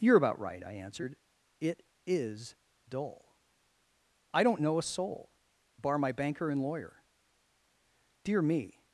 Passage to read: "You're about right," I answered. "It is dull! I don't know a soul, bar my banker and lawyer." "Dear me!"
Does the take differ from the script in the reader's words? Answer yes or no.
no